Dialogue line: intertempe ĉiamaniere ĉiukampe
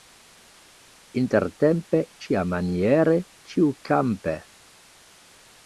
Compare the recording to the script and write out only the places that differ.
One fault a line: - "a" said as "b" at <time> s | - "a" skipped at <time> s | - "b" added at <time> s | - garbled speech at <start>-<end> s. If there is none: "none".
none